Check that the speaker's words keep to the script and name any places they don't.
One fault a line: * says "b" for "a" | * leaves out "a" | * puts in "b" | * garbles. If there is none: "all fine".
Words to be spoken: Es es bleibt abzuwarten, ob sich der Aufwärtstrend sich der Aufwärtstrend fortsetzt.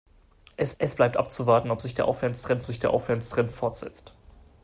all fine